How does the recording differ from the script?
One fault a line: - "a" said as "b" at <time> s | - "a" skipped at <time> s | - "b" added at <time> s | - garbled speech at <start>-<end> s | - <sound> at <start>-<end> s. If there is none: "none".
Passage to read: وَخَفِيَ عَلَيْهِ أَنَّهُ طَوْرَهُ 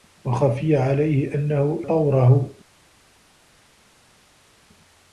none